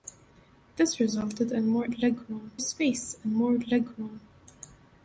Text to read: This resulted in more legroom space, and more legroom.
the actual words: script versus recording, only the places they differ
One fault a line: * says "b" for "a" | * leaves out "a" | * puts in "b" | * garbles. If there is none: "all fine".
all fine